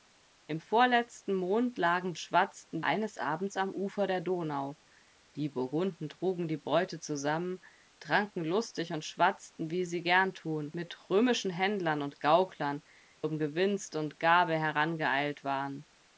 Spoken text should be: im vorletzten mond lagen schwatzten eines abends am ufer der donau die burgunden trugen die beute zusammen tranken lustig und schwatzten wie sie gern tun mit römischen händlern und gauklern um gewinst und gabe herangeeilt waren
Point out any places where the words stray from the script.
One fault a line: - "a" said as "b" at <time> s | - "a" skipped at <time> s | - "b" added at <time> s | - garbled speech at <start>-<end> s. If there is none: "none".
none